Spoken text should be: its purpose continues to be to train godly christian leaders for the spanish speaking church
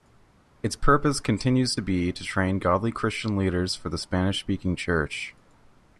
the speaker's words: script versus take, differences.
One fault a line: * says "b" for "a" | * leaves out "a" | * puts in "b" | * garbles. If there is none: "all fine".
* leaves out "to"